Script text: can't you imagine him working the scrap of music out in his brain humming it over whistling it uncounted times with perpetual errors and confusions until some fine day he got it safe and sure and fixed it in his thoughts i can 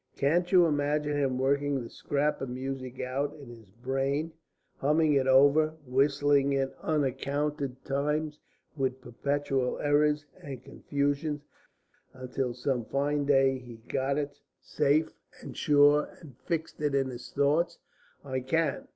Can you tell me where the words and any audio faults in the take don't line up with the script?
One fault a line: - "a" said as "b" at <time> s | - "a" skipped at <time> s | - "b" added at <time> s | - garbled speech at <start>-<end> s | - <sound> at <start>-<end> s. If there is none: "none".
none